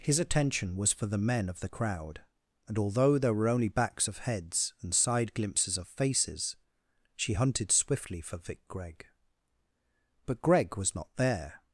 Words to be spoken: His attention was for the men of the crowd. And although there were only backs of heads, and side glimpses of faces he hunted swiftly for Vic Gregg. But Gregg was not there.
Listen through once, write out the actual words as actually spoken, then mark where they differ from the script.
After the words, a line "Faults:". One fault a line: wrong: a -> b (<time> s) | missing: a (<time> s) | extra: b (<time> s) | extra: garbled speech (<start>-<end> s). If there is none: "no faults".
His attention was for the men of the crowd. And although there were only backs of heads, and side glimpses of faces she hunted swiftly for Vic Gregg. But Gregg was not there.
Faults:
wrong: he -> she (7.2 s)